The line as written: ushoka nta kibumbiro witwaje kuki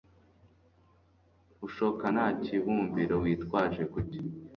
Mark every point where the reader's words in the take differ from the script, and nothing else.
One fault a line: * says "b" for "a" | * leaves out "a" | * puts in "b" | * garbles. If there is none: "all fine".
all fine